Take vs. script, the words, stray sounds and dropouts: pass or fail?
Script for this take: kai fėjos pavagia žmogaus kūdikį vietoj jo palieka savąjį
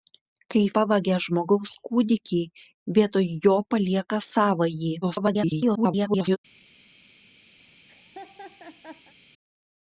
fail